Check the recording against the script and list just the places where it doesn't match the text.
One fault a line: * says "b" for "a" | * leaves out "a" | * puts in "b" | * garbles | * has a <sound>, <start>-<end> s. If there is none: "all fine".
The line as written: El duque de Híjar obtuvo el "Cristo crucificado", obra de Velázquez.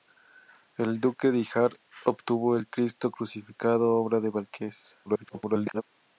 * garbles